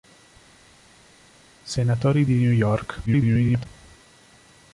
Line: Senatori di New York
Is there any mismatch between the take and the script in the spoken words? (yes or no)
yes